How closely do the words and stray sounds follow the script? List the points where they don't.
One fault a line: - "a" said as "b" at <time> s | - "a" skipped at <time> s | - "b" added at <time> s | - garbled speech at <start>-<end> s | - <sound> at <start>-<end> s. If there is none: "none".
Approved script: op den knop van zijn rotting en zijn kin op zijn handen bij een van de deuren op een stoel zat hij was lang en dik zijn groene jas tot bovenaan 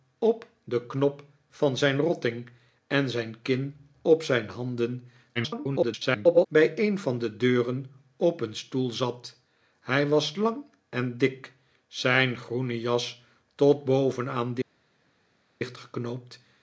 - garbled speech at 5.4-6.5 s